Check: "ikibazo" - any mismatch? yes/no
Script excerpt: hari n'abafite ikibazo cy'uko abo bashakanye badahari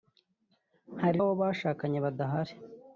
yes